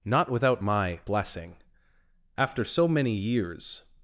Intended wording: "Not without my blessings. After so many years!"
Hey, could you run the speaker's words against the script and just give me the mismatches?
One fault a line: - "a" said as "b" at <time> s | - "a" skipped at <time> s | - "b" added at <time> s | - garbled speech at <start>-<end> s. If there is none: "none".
- "blessings" said as "blessing" at 1.0 s